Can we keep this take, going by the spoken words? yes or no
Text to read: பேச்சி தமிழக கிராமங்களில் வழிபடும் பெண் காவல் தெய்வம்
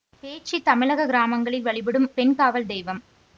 yes